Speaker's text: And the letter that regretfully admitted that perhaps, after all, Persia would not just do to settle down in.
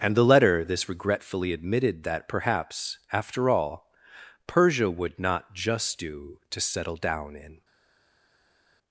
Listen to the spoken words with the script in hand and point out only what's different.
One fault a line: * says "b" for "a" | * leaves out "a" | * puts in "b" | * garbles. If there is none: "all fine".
* says "this" for "that"